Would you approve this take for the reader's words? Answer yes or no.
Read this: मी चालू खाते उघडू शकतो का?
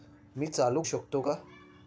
no